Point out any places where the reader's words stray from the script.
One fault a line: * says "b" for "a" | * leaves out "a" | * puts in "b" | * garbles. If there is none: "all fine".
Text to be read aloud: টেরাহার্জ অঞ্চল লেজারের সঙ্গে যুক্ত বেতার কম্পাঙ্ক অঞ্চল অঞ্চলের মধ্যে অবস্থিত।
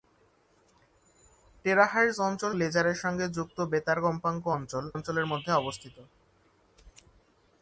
all fine